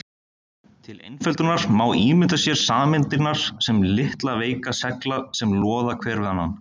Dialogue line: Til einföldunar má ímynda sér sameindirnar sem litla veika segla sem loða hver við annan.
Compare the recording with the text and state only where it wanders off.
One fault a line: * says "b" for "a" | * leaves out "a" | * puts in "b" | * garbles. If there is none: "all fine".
all fine